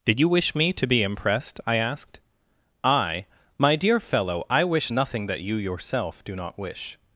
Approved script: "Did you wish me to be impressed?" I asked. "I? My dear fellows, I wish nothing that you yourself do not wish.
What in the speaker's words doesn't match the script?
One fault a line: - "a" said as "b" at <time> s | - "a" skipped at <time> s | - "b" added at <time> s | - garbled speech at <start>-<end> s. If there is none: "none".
- "fellows" said as "fellow" at 4.0 s